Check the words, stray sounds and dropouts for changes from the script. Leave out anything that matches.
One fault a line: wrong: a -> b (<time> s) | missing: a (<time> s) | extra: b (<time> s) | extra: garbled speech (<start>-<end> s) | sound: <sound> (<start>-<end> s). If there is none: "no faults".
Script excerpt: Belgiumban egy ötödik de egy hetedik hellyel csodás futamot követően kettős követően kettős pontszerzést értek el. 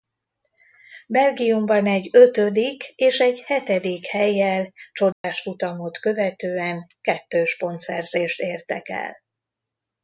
wrong: de -> és (3.0 s)
sound: dropout (5.1-5.2 s)
missing: követően kettős (7.6 s)